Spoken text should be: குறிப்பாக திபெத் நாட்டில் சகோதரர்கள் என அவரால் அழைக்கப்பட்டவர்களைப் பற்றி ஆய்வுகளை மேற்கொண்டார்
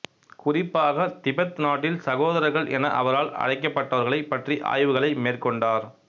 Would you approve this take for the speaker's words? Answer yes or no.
yes